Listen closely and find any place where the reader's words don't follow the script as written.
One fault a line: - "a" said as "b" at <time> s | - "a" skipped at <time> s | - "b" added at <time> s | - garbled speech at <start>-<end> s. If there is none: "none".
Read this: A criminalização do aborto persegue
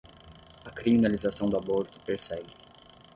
none